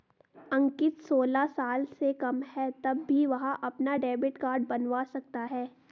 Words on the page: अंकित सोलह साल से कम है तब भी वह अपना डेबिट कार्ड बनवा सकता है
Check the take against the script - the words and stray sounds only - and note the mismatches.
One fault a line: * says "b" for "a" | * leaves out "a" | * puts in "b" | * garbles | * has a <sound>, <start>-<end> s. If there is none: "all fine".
all fine